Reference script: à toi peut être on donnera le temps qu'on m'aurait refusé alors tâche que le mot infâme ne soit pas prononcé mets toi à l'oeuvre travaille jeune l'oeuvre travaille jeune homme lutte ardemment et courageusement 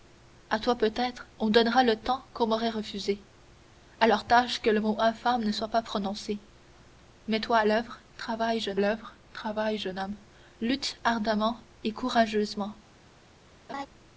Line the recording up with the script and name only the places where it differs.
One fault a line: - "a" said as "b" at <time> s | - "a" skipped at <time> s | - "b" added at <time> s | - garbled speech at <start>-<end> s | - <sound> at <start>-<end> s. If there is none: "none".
- laugh at 13.7-13.9 s